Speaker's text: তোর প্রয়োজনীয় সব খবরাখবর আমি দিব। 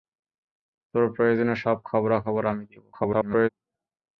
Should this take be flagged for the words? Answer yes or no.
yes